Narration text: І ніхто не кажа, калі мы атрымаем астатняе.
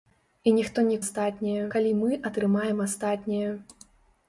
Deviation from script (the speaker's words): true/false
true